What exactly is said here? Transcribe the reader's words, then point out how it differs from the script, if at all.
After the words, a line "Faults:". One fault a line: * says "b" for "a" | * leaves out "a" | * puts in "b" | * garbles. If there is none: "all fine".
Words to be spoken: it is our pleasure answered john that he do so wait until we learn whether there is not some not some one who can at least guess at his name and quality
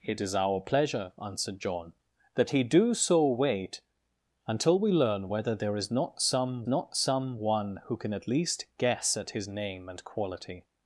it is our pleasure answered john that he do so wait until we learn whether there is not some not some one who can at least guess at his name and quality
Faults:
all fine